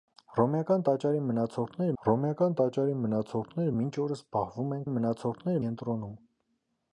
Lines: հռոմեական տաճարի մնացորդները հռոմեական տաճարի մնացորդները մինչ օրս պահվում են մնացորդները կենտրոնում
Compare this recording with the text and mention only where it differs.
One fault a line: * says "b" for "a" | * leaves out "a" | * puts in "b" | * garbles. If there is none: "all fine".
all fine